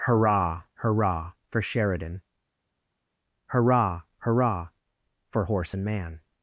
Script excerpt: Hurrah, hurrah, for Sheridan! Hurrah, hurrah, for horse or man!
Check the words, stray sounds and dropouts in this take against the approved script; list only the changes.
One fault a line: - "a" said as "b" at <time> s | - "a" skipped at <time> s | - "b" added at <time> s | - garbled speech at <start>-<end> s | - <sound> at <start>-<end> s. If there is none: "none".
- "or" said as "and" at 5.7 s